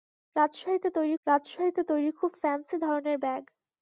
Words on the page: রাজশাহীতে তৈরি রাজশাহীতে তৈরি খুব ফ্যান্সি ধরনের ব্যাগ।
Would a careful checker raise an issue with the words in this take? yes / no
no